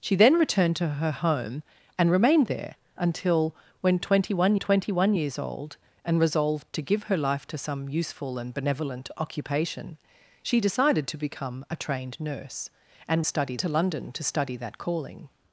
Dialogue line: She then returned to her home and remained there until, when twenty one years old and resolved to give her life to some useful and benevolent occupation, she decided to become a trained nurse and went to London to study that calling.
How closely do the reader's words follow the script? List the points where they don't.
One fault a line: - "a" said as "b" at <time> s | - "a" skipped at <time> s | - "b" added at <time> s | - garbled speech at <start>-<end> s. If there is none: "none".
- "twenty one" added at 4.6 s
- "went" said as "study" at 13.2 s